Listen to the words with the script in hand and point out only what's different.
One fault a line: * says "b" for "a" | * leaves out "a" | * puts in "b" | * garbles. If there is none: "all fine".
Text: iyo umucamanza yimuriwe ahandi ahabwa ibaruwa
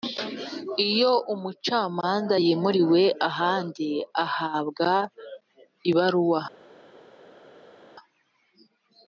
all fine